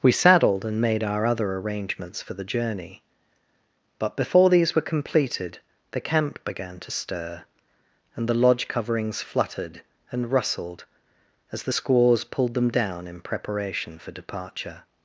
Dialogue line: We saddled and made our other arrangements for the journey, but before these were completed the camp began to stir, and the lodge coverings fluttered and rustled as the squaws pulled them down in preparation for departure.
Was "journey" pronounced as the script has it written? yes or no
yes